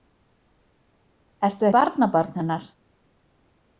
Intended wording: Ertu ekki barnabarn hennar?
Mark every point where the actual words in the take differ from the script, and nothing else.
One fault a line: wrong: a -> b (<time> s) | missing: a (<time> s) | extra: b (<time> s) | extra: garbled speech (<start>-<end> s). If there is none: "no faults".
missing: ekki (1.7 s)